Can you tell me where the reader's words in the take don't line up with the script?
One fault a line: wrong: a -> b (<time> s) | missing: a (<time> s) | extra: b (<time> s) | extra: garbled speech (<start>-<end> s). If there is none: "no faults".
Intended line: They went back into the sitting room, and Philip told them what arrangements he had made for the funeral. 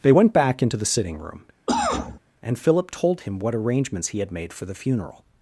wrong: them -> him (3.2 s)